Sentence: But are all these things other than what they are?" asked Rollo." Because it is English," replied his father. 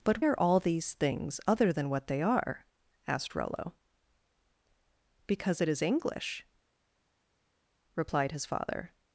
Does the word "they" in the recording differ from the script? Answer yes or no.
no